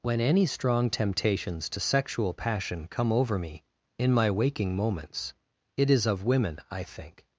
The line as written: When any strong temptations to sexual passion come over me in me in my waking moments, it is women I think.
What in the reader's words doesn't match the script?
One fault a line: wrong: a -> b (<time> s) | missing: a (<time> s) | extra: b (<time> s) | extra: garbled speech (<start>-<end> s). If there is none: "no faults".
missing: me in (4.1 s)
extra: of (6.1 s)